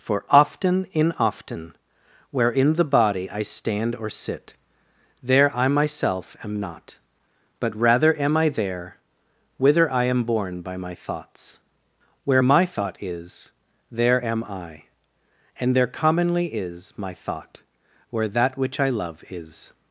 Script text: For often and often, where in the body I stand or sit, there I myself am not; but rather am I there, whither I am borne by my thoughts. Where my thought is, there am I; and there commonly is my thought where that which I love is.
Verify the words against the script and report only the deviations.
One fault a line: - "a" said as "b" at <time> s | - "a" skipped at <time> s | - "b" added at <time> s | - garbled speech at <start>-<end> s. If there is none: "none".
- "and" said as "in" at 0.9 s